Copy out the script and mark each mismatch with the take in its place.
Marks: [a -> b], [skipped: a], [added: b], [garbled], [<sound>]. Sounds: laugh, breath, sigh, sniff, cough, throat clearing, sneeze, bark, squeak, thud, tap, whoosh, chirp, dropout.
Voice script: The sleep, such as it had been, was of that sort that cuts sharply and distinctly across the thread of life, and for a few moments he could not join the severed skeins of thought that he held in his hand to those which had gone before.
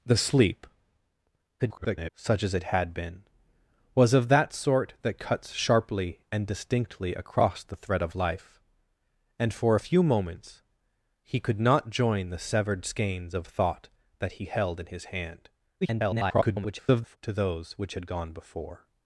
The sleep, [garbled] such as it had been, was of that sort that cuts sharply and distinctly across the thread of life, and for a few moments he could not join the severed skeins of thought that he held in his hand [garbled] to those which had gone before.